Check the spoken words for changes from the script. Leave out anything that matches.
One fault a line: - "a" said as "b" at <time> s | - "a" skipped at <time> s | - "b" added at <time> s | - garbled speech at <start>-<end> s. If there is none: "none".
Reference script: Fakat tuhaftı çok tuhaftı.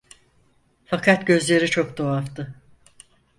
- "tuhaftı" said as "gözleri" at 1.3 s